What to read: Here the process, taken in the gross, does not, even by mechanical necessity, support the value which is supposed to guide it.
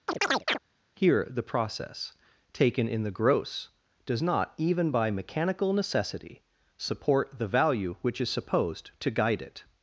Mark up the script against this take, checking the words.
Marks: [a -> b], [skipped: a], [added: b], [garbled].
Here the process, taken in the gross, does not, even by mechanical necessity, support the value which is supposed to guide it.